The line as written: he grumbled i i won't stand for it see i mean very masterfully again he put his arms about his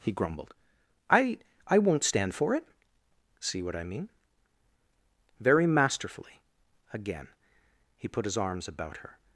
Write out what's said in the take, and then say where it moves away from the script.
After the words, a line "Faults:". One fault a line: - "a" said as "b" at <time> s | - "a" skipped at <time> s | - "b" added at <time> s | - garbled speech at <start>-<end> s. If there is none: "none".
he grumbled i i won't stand for it see what i mean very masterfully again he put his arms about her
Faults:
- "what" added at 3.6 s
- "his" said as "her" at 9.0 s